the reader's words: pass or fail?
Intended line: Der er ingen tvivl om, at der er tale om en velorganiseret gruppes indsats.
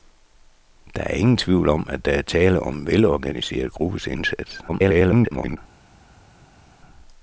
fail